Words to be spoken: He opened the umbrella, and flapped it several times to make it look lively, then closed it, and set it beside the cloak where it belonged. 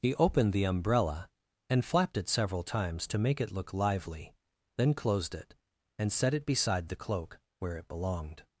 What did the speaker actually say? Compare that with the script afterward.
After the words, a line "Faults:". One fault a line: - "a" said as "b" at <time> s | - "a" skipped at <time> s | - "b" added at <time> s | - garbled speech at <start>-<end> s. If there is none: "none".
He opened the umbrella, and flapped it several times to make it look lively, then closed it, and set it beside the cloak where it belonged.
Faults:
none